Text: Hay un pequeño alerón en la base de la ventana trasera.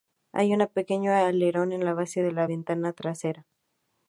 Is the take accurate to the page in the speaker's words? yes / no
yes